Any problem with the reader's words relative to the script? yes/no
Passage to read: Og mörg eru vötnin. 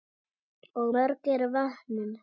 no